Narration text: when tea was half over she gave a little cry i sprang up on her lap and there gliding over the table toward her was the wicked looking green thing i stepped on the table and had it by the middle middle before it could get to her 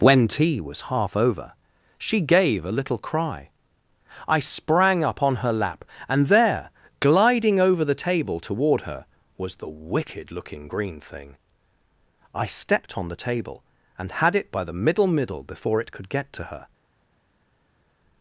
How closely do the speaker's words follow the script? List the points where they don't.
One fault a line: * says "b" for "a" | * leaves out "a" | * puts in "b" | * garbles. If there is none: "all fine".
all fine